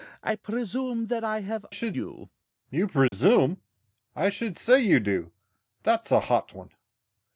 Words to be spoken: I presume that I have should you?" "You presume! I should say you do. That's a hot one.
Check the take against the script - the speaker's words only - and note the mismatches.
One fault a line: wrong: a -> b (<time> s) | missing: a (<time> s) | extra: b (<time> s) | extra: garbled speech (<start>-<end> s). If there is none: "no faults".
no faults